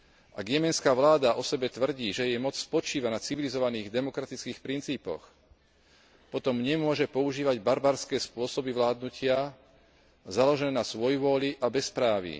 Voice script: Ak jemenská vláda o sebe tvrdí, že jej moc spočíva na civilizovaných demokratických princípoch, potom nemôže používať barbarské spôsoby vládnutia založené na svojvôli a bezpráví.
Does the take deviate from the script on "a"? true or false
false